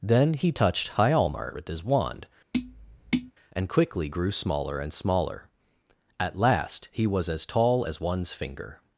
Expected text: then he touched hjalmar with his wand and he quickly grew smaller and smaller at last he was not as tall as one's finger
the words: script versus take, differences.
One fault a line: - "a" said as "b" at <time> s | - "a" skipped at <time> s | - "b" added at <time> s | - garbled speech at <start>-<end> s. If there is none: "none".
- "he" skipped at 3.7 s
- "not" skipped at 7.3 s